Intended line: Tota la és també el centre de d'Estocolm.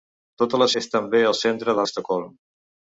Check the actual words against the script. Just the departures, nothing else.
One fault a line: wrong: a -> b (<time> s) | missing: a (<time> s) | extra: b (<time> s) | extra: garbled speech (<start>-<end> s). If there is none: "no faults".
no faults